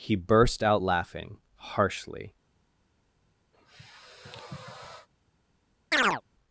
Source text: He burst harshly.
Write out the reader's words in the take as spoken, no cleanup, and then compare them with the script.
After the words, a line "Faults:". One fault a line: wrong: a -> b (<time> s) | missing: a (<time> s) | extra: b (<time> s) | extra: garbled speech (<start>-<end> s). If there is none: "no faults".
He burst out laughing harshly.
Faults:
extra: out laughing (0.6 s)